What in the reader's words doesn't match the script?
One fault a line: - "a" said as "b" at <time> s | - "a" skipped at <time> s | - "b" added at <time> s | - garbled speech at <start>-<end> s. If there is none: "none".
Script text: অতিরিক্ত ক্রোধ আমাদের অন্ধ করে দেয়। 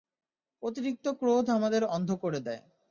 none